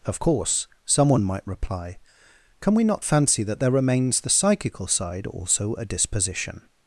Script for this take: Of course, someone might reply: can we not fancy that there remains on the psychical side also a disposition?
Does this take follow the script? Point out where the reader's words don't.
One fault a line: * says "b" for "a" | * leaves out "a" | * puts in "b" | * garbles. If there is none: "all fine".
* leaves out "on"